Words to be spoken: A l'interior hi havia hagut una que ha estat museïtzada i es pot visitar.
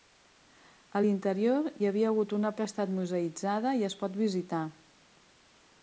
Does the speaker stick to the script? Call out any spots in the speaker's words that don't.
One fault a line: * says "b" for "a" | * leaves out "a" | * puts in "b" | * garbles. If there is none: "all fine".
all fine